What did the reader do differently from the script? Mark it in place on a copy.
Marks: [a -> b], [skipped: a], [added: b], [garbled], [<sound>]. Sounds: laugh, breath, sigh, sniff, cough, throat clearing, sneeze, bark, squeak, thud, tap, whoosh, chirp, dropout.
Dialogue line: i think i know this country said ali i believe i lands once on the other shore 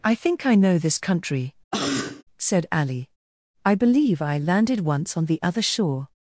i think i know this country [cough] said ali i believe i [lands -> landed] once on the other shore